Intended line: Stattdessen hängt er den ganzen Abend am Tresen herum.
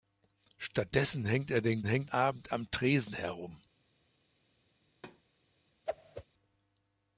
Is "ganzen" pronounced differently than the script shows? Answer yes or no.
yes